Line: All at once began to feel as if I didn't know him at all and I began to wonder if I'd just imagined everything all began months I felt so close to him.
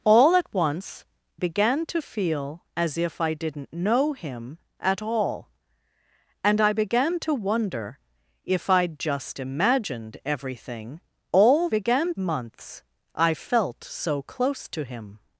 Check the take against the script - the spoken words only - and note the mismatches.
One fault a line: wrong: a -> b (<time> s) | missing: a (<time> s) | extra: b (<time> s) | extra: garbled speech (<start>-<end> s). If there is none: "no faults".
no faults